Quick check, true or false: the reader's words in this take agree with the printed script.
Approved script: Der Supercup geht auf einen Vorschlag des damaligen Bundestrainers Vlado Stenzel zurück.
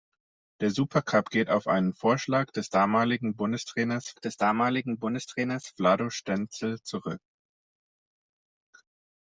false